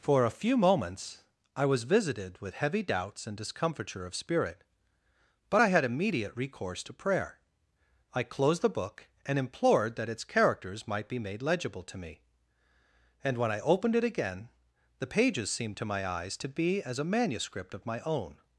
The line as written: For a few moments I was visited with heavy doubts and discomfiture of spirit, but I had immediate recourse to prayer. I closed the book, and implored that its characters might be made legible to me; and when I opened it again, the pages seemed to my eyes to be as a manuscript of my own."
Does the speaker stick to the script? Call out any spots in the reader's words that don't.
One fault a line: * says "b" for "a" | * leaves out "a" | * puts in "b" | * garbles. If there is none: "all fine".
all fine